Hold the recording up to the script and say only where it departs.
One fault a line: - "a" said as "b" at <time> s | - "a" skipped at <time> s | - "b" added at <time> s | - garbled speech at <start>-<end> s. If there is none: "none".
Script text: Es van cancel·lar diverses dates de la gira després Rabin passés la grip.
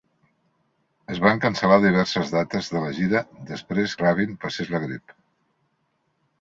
none